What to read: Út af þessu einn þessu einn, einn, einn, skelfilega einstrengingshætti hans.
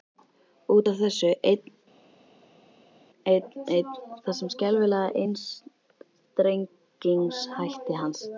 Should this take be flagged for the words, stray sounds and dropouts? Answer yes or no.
yes